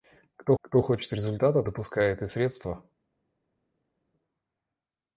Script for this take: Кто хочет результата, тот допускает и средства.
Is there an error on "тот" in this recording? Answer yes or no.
yes